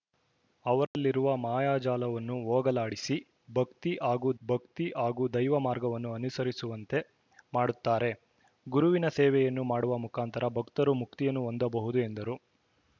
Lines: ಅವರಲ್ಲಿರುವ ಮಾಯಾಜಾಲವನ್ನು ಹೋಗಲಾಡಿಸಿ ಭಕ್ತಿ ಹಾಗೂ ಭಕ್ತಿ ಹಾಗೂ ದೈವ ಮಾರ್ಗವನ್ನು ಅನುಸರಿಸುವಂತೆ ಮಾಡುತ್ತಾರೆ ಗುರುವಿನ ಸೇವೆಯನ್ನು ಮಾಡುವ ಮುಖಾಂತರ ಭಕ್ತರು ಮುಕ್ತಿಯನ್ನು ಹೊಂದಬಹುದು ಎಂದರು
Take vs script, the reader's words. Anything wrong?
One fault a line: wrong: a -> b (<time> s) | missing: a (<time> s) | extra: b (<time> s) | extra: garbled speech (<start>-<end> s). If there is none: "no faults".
no faults